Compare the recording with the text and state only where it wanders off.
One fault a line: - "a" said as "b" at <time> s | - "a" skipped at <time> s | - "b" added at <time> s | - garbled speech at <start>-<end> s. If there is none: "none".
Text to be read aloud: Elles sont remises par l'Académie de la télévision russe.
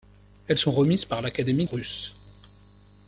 - "de la télévision" skipped at 1.6 s